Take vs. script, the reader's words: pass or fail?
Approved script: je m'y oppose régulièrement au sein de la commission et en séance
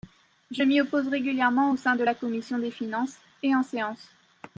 fail